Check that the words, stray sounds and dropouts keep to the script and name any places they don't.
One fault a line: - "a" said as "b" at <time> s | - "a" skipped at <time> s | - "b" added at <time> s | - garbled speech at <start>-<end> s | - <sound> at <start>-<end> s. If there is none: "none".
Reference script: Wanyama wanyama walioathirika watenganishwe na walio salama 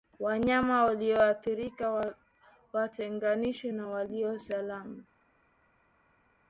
- "wanyama" skipped at 0.8 s